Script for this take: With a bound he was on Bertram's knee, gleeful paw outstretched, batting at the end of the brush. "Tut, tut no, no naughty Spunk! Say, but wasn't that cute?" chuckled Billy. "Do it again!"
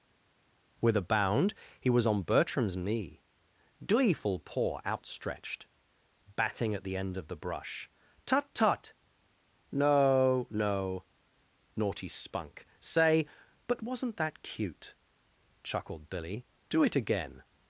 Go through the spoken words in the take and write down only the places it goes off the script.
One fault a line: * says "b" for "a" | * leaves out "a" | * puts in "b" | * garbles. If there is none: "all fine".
all fine